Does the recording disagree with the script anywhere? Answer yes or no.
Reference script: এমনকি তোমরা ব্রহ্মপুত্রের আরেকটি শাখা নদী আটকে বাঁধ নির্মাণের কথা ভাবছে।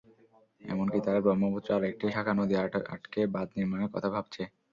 yes